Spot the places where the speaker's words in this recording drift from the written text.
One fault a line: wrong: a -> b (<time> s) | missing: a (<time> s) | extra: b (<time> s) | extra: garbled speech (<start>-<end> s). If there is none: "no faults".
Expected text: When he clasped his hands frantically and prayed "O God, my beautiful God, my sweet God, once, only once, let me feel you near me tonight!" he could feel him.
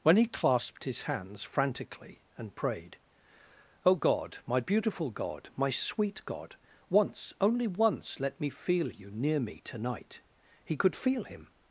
no faults